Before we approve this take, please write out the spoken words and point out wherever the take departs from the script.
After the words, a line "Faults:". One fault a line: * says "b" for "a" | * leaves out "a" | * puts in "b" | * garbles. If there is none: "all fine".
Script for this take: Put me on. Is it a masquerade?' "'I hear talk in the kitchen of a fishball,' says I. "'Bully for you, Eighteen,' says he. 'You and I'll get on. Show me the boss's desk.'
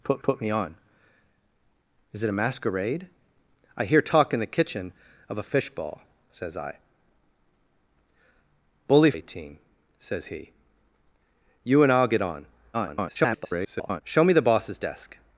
Put put me on. Is it a masquerade?' "'I hear talk in the kitchen of a fishball,' says I. "'Bully Eighteen,' says he. 'You and I'll get on. [garbled] Show me the boss's desk.'
Faults:
* puts in "put"
* leaves out "for you"
* garbles